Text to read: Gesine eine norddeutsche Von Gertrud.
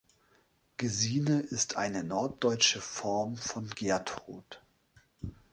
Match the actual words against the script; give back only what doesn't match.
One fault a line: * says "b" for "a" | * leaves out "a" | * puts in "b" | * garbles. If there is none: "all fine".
* puts in "ist"
* puts in "Form"